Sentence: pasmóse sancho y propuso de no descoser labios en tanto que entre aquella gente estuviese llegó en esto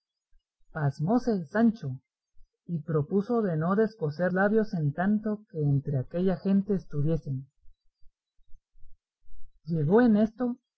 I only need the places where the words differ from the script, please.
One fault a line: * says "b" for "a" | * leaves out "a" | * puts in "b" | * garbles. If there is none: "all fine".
all fine